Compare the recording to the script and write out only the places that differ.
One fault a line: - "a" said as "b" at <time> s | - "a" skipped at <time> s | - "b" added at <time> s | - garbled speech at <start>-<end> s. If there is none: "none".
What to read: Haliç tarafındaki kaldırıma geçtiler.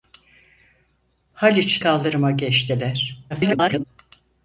- "tarafındaki" skipped at 1.8 s
- garbled speech at 3.3-3.8 s